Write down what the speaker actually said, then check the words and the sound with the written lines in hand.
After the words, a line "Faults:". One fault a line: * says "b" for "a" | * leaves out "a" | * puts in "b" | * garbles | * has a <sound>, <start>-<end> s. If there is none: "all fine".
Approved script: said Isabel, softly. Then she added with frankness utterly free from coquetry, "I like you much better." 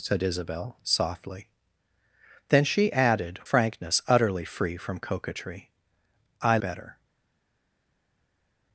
said Isabel, softly. Then she added frankness utterly free from coquetry, "I better."
Faults:
* leaves out "with"
* leaves out "like you much"